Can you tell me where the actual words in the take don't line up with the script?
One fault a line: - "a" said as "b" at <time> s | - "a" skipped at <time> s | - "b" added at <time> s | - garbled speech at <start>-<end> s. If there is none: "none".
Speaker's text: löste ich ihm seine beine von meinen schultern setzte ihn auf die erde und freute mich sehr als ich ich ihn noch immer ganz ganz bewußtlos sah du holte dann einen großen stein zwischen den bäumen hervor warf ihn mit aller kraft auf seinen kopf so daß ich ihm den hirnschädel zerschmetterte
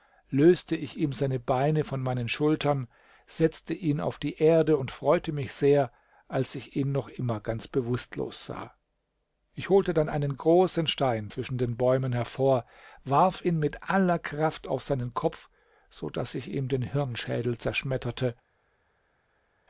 - "ich" skipped at 6.8 s
- "ganz" skipped at 7.7 s
- "du" said as "ich" at 9.5 s